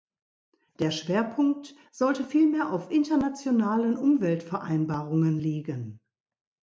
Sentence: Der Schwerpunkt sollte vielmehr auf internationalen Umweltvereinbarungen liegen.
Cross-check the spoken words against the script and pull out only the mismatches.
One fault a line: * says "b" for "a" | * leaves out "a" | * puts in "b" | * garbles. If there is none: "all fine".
all fine